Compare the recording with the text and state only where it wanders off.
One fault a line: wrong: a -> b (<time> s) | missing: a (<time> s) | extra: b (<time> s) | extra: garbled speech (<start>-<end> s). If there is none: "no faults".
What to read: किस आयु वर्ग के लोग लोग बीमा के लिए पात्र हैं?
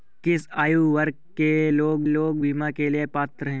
no faults